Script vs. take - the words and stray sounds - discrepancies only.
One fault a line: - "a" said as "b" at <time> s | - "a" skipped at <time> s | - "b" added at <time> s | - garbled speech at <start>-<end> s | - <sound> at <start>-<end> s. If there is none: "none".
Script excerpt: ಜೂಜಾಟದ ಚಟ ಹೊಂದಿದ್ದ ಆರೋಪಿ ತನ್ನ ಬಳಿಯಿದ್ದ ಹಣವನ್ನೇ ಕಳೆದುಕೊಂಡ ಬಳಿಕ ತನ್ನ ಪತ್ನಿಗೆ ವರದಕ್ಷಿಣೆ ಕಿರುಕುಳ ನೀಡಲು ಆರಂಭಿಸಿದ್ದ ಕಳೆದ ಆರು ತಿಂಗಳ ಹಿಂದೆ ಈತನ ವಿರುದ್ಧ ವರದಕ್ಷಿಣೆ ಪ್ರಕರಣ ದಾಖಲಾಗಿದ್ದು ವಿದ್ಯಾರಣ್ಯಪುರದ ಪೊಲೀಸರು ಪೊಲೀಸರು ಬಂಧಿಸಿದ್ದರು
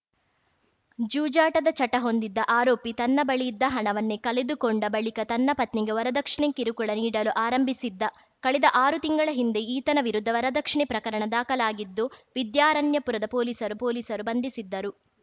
none